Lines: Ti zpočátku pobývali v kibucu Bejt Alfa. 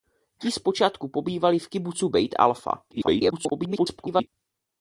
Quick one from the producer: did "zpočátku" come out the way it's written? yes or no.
yes